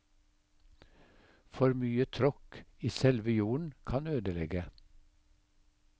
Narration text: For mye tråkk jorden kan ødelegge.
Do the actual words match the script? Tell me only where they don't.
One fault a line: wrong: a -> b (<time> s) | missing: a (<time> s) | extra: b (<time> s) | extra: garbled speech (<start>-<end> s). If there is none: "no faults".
extra: i selve (2.8 s)